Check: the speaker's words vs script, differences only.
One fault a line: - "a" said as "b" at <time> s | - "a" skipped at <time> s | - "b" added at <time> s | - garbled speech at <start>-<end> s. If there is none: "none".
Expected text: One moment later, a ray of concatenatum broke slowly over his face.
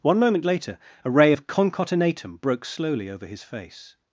none